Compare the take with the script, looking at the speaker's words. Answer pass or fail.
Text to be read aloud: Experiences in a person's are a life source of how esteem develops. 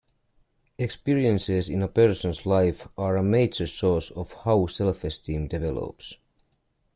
fail